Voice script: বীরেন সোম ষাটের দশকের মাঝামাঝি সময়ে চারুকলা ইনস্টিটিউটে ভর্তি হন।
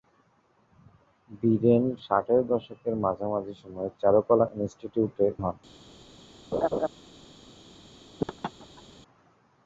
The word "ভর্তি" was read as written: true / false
false